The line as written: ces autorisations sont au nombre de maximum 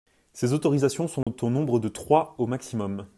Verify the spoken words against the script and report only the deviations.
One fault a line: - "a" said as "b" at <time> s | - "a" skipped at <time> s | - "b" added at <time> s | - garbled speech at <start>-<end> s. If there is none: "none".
- "trois au" added at 1.9 s